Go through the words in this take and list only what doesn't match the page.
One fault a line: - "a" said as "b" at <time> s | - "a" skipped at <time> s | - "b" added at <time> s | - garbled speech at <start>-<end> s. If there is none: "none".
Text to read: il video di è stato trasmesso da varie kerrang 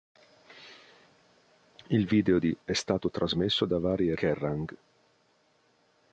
none